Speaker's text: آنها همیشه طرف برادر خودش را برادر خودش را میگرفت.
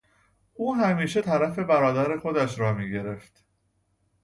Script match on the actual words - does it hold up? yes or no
no